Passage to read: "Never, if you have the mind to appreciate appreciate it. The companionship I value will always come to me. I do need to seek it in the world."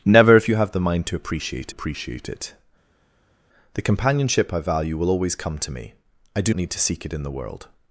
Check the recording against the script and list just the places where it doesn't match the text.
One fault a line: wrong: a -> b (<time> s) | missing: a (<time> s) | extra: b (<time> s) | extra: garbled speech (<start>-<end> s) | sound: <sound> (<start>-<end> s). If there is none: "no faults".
no faults